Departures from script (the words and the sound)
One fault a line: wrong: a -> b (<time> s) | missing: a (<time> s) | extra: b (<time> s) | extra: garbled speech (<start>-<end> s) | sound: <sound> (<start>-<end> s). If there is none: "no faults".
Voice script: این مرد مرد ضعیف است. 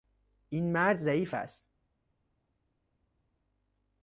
missing: مرد (1.0 s)